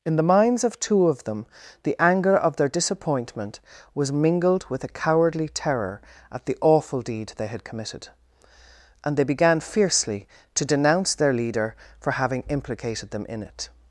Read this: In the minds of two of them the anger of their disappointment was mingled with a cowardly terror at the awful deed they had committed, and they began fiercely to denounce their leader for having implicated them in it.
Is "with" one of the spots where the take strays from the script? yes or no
no